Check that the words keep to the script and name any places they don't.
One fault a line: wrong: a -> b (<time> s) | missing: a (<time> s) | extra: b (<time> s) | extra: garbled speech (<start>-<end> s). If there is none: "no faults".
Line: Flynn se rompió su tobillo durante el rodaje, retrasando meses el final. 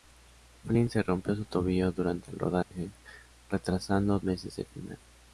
no faults